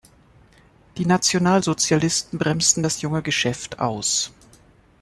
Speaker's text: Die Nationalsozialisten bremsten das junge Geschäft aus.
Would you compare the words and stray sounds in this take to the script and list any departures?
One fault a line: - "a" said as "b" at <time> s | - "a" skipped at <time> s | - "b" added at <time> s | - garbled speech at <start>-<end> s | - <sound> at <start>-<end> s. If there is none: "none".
none